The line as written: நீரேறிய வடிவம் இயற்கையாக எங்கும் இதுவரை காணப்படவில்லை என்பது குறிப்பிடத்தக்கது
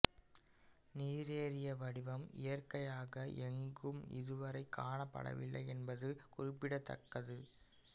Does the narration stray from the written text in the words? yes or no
no